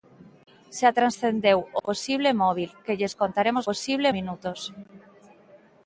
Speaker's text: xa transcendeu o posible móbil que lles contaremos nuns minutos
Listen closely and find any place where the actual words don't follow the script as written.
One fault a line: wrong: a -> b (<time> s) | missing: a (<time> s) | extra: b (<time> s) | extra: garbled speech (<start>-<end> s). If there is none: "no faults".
wrong: nuns -> posible (3.7 s)